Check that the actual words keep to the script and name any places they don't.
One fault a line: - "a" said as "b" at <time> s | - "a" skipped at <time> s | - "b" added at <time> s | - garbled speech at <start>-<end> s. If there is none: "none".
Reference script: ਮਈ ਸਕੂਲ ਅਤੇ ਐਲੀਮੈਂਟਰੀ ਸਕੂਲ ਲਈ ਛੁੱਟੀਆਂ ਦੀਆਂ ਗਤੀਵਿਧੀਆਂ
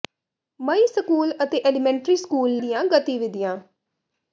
- "ਲਈ ਛੁੱਟੀਆਂ" skipped at 2.6 s